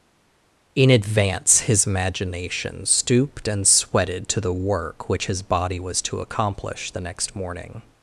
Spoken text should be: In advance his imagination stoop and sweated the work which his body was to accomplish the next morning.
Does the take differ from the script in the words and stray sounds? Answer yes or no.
yes